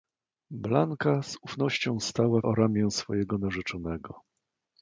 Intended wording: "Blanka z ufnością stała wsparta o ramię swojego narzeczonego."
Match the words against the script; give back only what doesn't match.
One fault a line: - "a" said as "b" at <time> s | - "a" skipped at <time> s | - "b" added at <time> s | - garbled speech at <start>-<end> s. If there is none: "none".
- "wsparta" skipped at 2.4 s